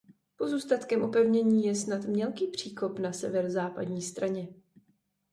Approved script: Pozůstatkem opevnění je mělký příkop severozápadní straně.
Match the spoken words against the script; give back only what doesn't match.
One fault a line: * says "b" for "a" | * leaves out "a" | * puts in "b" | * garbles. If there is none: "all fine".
* puts in "snad"
* puts in "na"